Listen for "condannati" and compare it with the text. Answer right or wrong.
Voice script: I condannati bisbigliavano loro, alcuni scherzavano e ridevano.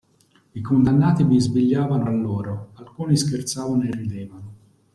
right